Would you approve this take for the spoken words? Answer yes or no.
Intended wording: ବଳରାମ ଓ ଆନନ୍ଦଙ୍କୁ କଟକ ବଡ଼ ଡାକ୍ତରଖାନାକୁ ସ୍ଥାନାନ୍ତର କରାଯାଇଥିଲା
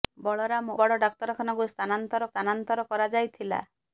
no